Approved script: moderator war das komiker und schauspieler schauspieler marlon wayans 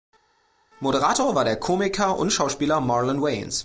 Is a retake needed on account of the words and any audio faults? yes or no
yes